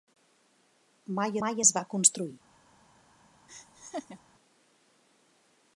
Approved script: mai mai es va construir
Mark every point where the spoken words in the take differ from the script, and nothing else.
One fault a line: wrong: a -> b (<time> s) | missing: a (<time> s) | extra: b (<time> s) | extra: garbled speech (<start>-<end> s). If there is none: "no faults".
no faults